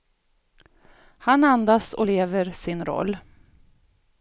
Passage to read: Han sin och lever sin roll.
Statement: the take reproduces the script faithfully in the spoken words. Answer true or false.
false